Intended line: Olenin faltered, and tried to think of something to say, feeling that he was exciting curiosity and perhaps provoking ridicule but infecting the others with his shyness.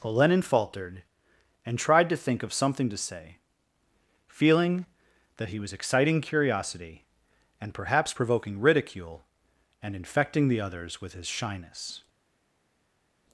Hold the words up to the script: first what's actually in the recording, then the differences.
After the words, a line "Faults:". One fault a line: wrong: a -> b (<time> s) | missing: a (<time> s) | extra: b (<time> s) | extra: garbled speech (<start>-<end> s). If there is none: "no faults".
Olenin faltered, and tried to think of something to say, feeling that he was exciting curiosity and perhaps provoking ridicule and infecting the others with his shyness.
Faults:
wrong: but -> and (9.8 s)